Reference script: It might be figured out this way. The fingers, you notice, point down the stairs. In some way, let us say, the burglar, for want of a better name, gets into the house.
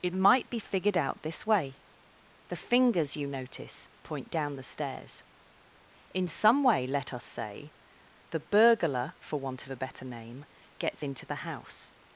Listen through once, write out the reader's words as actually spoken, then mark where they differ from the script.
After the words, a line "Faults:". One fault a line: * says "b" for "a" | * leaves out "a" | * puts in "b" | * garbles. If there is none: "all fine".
It might be figured out this way. The fingers, you notice, point down the stairs. In some way, let us say, the burglar, for want of a better name, gets into the house.
Faults:
all fine